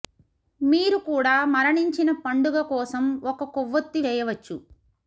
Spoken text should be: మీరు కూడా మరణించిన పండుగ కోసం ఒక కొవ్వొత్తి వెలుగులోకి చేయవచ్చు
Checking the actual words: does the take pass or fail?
fail